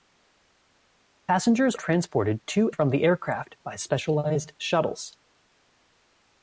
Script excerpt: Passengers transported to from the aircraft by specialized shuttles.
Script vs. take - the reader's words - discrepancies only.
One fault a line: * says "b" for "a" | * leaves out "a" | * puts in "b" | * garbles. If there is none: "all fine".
all fine